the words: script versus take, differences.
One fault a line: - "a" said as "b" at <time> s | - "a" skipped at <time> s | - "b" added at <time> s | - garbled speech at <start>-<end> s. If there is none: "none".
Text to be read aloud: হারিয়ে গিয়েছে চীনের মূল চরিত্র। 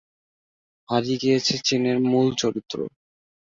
none